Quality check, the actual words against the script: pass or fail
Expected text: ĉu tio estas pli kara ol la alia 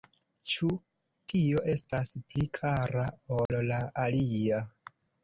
pass